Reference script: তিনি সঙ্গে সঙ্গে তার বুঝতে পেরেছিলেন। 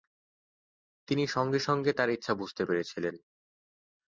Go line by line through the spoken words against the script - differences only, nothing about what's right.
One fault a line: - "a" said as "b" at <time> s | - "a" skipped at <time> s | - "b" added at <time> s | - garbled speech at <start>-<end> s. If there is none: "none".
- "ইচ্ছা" added at 2.1 s